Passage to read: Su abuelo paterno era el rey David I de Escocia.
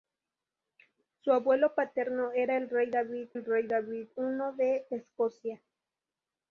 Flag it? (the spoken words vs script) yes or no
yes